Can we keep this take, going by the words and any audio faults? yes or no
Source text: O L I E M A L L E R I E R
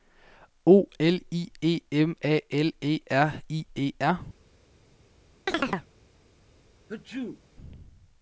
no